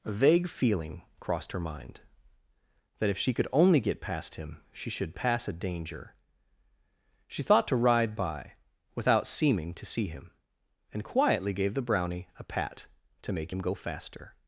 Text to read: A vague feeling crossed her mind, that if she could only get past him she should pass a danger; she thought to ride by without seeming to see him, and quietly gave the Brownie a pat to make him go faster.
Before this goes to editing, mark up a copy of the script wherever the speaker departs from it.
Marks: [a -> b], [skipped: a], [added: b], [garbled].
A vague feeling crossed her mind, that if she could only get past him she should pass a danger; she thought to ride by without seeming to see him, and quietly gave the Brownie a pat to make him go faster.